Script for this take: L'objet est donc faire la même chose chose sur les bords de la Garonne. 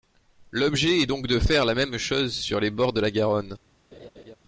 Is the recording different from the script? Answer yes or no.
yes